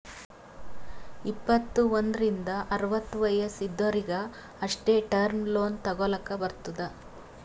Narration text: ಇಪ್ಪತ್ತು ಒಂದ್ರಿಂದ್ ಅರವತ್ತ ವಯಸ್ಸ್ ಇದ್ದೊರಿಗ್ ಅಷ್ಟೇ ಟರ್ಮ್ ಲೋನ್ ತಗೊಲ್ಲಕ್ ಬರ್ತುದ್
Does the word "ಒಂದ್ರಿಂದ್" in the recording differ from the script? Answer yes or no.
no